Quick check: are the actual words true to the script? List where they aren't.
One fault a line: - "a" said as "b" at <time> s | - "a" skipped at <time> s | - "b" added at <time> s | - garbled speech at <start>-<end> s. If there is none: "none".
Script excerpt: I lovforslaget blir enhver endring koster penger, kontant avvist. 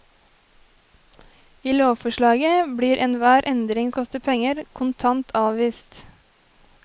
none